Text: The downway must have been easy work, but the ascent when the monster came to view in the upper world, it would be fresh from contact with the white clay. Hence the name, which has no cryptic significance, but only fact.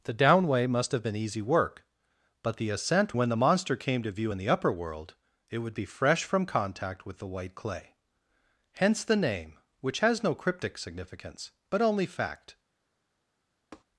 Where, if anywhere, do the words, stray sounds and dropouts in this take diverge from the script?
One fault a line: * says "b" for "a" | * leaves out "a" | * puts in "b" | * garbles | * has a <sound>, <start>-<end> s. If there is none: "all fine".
* has a tap, 13.7-13.8 s